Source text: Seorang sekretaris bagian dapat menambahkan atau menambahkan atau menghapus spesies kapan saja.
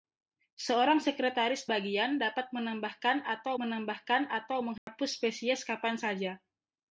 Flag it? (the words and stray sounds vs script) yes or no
yes